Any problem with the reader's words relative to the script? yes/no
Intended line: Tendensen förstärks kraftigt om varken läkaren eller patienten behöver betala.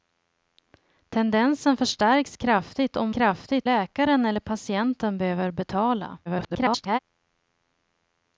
yes